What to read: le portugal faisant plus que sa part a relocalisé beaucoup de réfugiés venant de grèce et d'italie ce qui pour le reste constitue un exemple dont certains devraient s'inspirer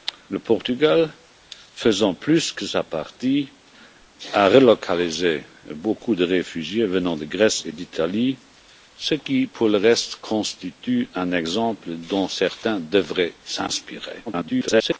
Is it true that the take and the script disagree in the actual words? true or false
true